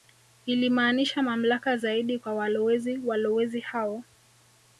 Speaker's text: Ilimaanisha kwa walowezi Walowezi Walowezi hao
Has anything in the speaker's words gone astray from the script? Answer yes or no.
yes